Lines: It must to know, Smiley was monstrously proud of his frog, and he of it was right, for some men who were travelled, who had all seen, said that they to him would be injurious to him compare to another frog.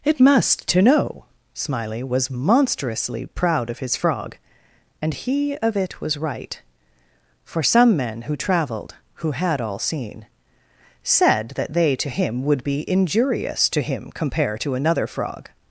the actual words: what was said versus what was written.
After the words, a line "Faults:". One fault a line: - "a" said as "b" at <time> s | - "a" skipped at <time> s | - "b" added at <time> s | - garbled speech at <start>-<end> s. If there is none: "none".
It must to know, Smiley was monstrously proud of his frog, and he of it was right, for some men who travelled, who had all seen, said that they to him would be injurious to him compare to another frog.
Faults:
- "were" skipped at 8.3 s